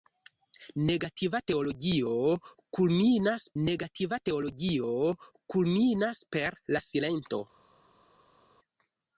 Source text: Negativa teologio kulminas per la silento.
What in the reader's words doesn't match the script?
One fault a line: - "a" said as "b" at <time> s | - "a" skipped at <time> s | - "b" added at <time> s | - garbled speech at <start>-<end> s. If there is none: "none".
- "negativa teologio kulminas" added at 3.6 s